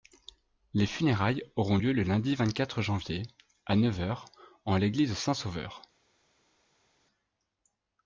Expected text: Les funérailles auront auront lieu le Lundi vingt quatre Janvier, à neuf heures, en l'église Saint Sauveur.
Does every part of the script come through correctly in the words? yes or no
no